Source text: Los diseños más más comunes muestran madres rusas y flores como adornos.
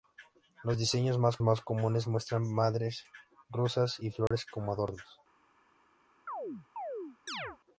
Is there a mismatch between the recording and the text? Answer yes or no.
no